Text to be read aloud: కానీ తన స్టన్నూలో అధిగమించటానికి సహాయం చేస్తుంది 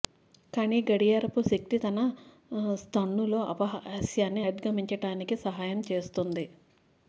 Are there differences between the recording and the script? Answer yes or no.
yes